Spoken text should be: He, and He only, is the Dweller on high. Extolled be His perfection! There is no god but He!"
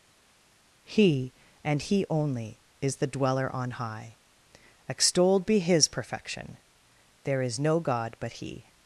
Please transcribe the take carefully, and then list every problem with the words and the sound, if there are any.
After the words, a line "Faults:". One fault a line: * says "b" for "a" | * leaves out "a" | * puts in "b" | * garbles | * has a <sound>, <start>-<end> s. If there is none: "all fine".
He, and He only, is the Dweller on high. Extolled be His perfection! There is no god but He!"
Faults:
all fine